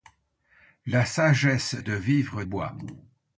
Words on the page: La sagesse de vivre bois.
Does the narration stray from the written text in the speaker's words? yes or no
no